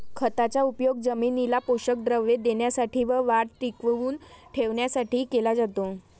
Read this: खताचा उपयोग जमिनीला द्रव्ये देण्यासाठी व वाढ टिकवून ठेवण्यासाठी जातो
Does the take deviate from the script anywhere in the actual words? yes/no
yes